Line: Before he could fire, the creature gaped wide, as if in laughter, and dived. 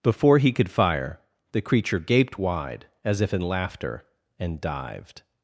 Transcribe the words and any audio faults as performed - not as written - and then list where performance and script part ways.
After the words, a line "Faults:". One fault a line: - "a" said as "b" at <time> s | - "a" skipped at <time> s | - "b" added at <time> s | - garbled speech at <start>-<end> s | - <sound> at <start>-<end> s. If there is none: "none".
Before he could fire, the creature gaped wide, as if in laughter, and dived.
Faults:
none